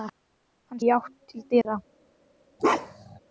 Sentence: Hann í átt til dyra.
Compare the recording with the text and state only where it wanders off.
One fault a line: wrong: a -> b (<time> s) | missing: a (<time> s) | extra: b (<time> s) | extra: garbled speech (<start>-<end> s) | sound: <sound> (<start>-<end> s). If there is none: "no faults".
sound: dropout (1.6-1.7 s)
sound: bark (2.6-3.2 s)